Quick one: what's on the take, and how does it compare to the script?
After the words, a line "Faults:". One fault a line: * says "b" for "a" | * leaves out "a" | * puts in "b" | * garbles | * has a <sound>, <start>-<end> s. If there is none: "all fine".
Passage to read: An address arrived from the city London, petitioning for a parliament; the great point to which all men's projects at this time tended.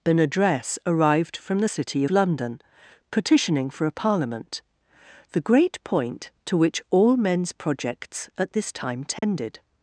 An address arrived from the city London, petitioning for a parliament; the great point to which all men's projects at this time tended.
Faults:
* has a dropout, 9.2-9.2 s